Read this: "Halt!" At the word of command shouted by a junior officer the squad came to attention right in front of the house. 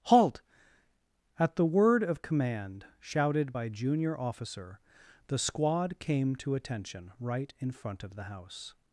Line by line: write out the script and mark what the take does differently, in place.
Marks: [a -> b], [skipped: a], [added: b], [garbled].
"Halt!" At the word of command shouted by [skipped: a] junior officer the squad came to attention right in front of the house.